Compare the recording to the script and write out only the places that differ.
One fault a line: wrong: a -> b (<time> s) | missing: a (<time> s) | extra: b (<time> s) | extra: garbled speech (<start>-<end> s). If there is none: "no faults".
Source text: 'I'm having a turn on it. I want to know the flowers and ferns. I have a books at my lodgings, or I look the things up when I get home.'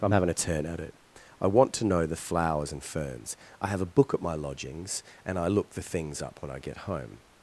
wrong: on -> at (0.6 s)
wrong: books -> book (3.8 s)
wrong: or -> and (5.2 s)